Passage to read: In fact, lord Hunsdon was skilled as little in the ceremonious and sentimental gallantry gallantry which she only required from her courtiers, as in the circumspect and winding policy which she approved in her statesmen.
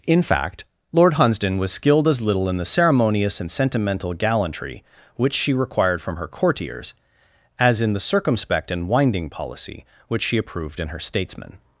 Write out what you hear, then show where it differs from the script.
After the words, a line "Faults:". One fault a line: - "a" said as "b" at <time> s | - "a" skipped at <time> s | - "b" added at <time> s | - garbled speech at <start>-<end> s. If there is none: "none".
In fact, lord Hunsdon was skilled as little in the ceremonious and sentimental gallantry which she required from her courtiers, as in the circumspect and winding policy which she approved in her statesmen.
Faults:
- "gallantry" skipped at 4.8 s
- "only" skipped at 5.5 s